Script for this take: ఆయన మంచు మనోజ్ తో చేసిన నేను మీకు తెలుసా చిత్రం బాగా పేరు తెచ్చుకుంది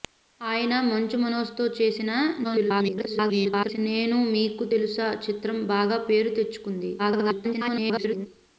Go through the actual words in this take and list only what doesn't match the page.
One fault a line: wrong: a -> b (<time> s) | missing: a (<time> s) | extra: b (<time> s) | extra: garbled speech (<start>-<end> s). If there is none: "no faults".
extra: garbled speech (2.4-3.8 s)
extra: garbled speech (7.0-8.3 s)